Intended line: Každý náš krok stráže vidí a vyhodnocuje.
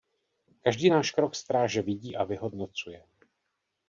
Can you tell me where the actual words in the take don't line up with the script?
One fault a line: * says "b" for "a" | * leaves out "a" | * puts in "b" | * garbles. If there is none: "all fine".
all fine